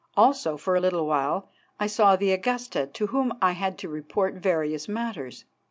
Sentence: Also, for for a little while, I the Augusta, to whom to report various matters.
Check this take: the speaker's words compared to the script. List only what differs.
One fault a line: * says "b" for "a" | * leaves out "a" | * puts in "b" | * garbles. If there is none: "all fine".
* leaves out "for"
* puts in "saw"
* puts in "I had"